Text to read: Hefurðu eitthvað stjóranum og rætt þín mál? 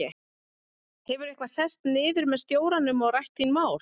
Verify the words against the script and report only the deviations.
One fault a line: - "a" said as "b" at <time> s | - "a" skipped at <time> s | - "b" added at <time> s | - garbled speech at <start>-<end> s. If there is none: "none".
- "sest niður með" added at 1.5 s